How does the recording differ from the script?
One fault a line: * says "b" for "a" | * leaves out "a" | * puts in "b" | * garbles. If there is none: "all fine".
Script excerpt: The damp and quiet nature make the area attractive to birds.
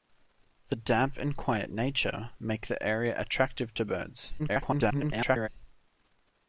* garbles